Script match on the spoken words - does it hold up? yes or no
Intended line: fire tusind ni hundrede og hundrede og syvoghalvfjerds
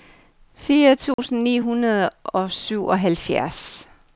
no